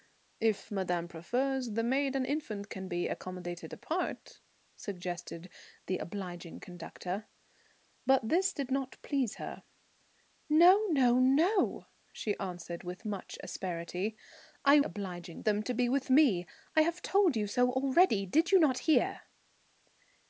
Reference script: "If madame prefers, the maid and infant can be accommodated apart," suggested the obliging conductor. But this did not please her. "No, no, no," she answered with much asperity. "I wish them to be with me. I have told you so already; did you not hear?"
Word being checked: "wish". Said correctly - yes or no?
no